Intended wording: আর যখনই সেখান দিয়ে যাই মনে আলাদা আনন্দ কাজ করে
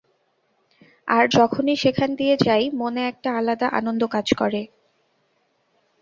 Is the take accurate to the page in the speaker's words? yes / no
no